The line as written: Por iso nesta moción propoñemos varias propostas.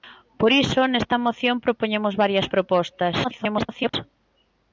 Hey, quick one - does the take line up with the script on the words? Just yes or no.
no